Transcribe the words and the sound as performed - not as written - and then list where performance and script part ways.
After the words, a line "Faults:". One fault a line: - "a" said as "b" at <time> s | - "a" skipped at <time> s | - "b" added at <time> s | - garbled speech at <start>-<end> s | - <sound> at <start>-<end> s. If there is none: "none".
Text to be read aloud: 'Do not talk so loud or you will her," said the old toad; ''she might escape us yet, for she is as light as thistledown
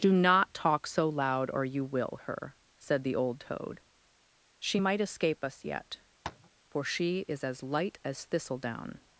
'Do not talk so loud or you will her," said the old toad; ''she might escape us yet, for she is as light as thistledown
Faults:
- tap at 6.2-6.5 s